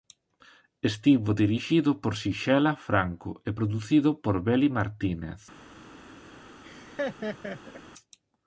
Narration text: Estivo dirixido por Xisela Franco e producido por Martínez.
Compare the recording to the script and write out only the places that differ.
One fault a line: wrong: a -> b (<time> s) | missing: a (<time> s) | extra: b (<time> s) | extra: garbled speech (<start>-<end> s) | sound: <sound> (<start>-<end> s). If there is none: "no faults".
extra: Beli (4.5 s)
sound: laugh (6.6-7.8 s)